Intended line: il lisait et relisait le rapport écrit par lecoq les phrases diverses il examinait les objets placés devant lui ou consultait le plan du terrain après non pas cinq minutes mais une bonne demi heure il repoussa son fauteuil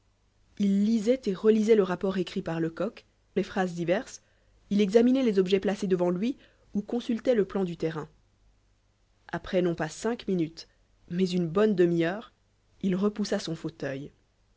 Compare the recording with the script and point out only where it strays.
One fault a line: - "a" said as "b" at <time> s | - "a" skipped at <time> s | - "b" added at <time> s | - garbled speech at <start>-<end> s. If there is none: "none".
none